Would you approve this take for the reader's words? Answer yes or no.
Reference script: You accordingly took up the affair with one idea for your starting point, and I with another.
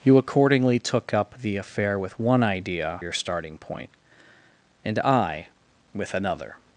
no